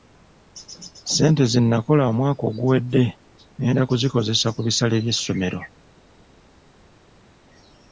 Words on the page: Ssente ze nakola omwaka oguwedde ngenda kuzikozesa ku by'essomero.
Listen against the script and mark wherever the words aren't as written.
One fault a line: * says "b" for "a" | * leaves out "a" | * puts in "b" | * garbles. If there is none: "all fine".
* puts in "bisale"